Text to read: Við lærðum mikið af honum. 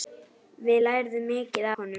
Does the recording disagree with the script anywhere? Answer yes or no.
yes